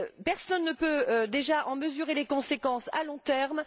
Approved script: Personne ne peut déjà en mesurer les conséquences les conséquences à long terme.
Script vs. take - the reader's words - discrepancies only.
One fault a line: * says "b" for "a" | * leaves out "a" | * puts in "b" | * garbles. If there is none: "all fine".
* leaves out "les conséquences"